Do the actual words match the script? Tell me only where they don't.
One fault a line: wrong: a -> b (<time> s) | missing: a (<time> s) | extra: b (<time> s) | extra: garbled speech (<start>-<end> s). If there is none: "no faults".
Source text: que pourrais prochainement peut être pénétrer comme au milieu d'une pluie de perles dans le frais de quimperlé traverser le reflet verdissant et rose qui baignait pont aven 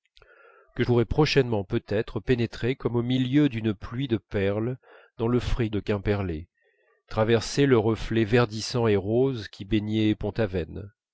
no faults